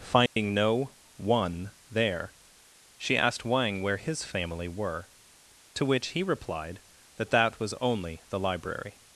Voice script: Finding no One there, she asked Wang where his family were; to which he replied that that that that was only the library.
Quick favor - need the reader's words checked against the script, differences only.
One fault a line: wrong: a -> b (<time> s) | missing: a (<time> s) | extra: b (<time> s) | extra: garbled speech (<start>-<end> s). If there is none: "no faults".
missing: that that (7.6 s)